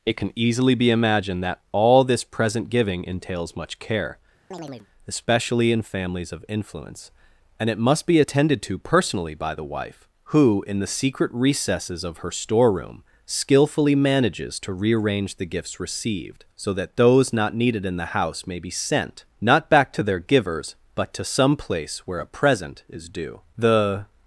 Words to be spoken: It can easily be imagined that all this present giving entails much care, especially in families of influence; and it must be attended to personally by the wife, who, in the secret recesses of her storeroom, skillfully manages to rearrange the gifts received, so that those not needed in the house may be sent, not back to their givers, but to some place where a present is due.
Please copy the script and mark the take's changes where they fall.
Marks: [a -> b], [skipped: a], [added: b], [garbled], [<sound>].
It can easily be imagined that all this present giving entails much care, [chirp] especially in families of influence; and it must be attended to personally by the wife, who, in the secret recesses of her storeroom, skillfully manages to rearrange the gifts received, so that those not needed in the house may be sent, not back to their givers, but to some place where a present is due. [added: The]